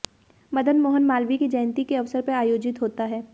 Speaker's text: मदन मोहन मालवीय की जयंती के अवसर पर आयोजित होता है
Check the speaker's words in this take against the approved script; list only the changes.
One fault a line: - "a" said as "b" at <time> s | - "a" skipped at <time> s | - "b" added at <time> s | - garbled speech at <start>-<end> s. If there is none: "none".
none